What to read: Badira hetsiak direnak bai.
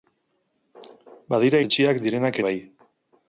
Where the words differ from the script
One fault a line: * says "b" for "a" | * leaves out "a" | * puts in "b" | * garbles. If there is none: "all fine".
all fine